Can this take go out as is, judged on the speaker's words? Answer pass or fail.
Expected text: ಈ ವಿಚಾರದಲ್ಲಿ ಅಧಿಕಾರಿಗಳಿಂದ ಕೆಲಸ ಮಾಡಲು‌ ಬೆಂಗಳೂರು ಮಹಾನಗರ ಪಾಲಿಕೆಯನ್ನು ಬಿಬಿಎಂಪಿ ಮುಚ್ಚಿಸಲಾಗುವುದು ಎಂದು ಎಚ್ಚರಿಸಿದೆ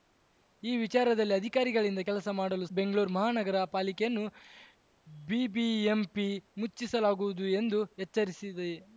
pass